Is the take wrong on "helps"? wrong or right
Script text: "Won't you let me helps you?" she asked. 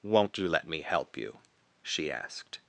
wrong